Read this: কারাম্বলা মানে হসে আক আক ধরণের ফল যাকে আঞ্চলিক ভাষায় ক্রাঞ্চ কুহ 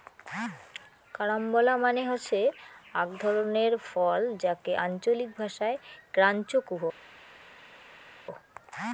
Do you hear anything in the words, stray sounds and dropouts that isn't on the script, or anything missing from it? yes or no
yes